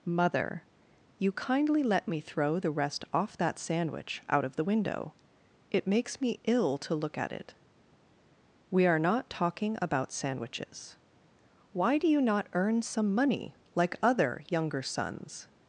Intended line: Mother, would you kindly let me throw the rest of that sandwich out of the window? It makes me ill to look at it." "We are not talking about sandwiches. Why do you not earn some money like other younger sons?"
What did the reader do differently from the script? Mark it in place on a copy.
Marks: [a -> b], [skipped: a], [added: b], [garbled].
Mother, [skipped: would] you kindly let me throw the rest [of -> off] that sandwich out of the window? It makes me ill to look at it." "We are not talking about sandwiches. Why do you not earn some money like other younger sons?"